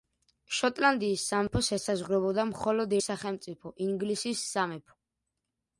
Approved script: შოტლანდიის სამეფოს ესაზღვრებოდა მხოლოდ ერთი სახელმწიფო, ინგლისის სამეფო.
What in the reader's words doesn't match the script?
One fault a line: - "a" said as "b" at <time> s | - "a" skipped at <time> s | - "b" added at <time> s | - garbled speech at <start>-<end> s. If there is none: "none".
- "ერთი" skipped at 3.0 s